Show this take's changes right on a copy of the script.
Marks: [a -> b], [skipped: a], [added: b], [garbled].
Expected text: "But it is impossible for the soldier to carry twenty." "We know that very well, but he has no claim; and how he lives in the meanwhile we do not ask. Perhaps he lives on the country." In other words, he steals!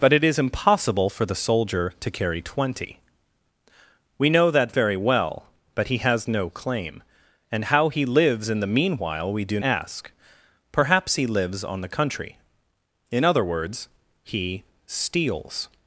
"But it is impossible for the soldier to carry twenty." "We know that very well, but he has no claim; and how he lives in the meanwhile we do [skipped: not] ask. Perhaps he lives on the country." In other words, he steals!